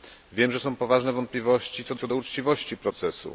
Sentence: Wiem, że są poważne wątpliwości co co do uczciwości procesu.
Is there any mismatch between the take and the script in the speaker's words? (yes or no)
no